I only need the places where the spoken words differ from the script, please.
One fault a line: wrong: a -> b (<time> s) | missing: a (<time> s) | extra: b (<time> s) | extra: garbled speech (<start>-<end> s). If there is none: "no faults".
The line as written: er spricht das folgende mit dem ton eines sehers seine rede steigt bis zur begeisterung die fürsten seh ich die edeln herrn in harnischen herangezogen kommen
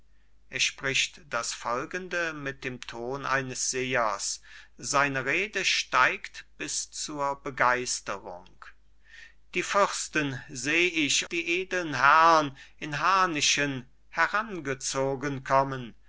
no faults